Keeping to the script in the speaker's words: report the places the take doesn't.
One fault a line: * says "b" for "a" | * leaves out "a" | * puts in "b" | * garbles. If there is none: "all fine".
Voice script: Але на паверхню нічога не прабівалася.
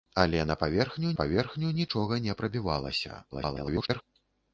* puts in "паверхню"
* garbles